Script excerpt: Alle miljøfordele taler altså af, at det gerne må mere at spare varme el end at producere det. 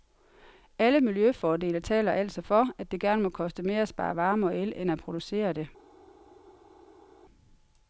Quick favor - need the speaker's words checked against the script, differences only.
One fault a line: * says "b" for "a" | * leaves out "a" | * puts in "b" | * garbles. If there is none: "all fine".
* says "for" for "af"
* puts in "koste"
* puts in "og"